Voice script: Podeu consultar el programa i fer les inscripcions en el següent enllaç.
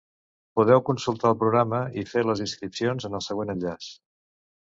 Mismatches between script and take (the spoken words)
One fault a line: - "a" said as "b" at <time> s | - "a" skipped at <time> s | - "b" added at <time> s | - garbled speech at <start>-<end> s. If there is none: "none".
none